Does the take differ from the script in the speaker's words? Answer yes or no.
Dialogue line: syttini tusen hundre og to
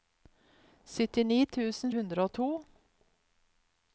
no